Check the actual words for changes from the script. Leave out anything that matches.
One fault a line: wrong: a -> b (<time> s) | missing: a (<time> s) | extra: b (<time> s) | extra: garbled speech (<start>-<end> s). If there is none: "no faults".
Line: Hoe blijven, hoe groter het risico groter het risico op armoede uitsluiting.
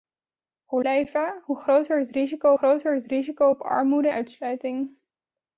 no faults